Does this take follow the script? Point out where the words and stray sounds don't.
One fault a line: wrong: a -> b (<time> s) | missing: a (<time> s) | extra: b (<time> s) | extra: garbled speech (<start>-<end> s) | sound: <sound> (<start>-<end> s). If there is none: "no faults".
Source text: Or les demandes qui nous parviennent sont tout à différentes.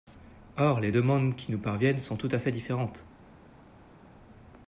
extra: fait (2.4 s)